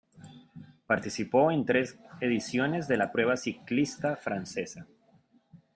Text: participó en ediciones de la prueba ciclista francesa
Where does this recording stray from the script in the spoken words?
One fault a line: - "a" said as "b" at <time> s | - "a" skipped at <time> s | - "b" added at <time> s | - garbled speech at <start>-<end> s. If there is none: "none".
- "tres" added at 1.6 s